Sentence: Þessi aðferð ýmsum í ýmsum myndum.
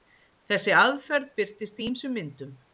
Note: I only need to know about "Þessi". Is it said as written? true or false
true